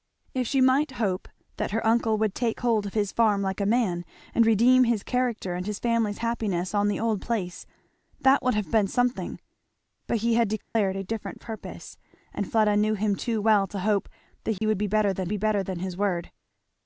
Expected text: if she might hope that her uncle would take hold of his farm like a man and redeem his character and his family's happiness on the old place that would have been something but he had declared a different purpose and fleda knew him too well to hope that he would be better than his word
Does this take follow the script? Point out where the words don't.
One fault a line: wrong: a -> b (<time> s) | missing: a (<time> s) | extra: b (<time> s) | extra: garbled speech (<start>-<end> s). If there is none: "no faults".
extra: be better than (15.3 s)